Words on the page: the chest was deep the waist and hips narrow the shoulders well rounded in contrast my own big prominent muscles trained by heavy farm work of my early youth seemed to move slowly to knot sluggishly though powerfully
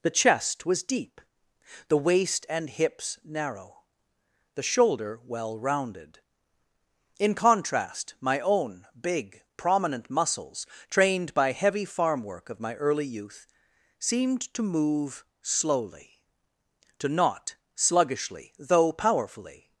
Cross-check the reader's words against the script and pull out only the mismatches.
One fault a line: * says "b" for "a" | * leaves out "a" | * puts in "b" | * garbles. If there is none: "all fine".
* says "shoulder" for "shoulders"